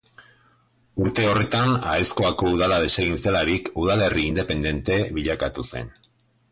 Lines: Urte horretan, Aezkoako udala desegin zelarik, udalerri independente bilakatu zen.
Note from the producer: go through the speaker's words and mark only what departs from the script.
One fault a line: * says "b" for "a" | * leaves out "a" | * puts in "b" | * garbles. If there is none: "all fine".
all fine